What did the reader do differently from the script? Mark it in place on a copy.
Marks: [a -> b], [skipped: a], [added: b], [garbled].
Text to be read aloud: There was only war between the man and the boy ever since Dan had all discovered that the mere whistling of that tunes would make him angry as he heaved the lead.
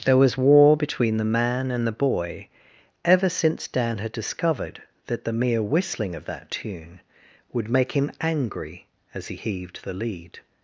There was [skipped: only] war between the man and the boy ever since Dan had [skipped: all] discovered that the mere whistling of that [tunes -> tune] would make him angry as he heaved the lead.